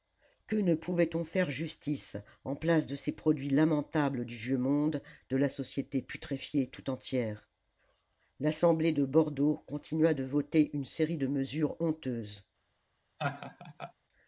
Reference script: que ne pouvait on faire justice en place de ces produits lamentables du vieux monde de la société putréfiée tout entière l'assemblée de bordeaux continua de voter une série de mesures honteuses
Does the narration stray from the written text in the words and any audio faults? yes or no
yes